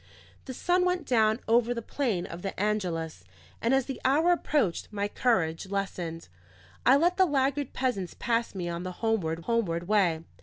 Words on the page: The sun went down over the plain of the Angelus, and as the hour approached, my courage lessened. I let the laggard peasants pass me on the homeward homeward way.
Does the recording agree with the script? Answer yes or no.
yes